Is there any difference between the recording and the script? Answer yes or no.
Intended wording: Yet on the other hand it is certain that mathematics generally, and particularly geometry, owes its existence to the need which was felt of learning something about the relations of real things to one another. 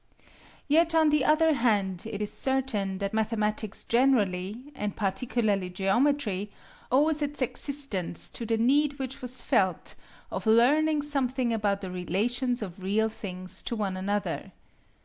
no